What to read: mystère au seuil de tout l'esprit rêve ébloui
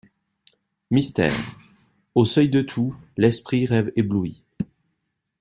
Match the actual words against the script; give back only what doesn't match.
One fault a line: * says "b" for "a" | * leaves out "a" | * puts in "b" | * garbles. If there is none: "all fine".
all fine